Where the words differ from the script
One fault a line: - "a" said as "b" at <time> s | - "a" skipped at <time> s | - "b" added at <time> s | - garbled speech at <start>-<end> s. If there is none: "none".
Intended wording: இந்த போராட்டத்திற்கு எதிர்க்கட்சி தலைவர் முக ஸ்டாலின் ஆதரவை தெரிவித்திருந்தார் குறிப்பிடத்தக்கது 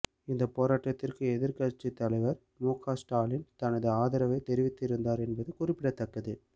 - "தனது" added at 3.5 s
- "என்பது" added at 5.3 s